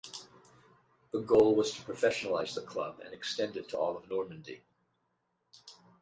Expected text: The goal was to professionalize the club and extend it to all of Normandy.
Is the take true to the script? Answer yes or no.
yes